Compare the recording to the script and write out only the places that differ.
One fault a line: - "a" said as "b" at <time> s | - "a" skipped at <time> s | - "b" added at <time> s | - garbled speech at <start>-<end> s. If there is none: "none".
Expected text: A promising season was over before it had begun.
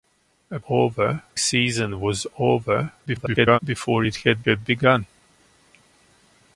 - "promising" said as "over" at 0.7 s
- garbled speech at 3.1-3.6 s
- "had" added at 4.4 s